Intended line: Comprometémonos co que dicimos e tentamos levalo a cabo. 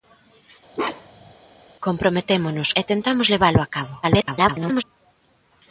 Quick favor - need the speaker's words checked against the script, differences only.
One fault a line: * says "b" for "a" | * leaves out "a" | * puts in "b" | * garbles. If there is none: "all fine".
* leaves out "co que dicimos"
* garbles